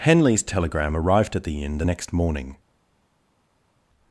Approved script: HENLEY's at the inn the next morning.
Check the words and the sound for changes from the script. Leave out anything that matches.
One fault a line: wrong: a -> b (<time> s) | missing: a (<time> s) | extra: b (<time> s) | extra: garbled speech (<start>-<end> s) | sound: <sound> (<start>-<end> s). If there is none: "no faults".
extra: telegram arrived (0.4 s)